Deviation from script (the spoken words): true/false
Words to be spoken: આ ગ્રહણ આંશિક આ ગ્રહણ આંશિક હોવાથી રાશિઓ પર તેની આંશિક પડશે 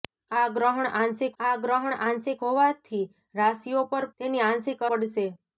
false